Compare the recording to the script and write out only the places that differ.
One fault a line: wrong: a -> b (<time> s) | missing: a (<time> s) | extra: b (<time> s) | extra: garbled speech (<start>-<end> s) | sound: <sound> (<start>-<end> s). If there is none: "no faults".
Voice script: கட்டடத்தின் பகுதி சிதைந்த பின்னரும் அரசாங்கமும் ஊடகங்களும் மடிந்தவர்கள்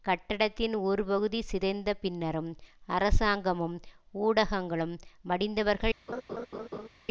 extra: ஒரு (0.8 s)
sound: laugh (6.1-6.9 s)